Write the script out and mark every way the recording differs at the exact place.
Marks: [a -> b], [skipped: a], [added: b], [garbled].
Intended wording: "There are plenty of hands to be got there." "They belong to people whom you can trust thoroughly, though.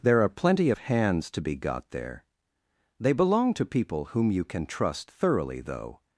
"There are plenty of hands to be got there." "They belong to people whom you can trust thoroughly, though.